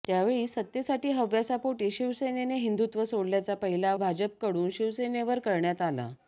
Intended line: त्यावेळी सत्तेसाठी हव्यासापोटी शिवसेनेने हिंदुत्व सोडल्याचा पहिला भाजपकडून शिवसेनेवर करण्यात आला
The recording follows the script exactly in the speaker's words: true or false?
true